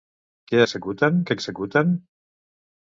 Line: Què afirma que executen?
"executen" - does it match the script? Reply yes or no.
yes